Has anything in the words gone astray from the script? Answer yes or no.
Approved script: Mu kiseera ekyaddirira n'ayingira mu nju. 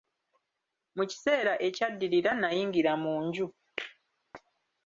no